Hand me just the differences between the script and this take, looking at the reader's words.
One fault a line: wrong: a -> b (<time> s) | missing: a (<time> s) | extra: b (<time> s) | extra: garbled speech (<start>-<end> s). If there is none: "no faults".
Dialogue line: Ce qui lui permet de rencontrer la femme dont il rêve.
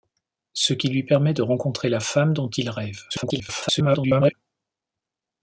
extra: garbled speech (3.1-4.3 s)